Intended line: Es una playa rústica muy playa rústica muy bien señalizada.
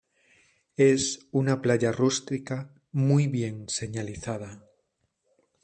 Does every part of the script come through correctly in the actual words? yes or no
no